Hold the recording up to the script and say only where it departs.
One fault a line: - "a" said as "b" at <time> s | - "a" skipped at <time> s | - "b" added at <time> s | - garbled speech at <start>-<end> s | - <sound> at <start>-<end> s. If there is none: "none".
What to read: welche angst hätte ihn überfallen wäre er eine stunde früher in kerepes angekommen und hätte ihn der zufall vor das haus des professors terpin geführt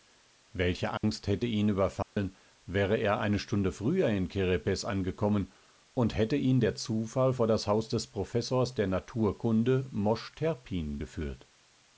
- dropout at 1.0-1.0 s
- dropout at 2.0-2.2 s
- "der naturkunde mosch" added at 8.7 s